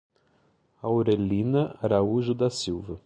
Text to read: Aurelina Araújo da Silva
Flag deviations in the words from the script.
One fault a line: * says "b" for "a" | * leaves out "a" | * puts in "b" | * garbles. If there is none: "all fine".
all fine